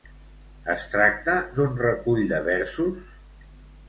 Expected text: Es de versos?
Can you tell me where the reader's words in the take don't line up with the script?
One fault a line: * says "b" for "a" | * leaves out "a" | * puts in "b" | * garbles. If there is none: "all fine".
* puts in "tracta d'un recull"